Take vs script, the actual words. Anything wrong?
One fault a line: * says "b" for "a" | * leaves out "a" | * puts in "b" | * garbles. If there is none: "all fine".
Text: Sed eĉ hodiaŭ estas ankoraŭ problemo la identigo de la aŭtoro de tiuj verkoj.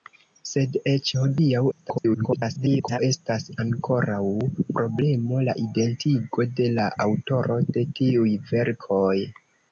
* garbles